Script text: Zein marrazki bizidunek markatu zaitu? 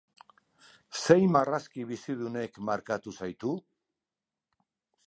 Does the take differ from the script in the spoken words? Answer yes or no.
no